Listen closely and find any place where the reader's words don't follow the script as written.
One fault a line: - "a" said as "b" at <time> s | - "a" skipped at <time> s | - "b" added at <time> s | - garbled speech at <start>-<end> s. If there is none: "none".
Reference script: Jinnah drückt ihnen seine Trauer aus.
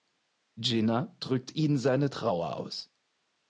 none